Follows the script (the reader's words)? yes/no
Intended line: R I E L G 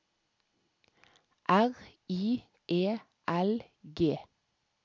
yes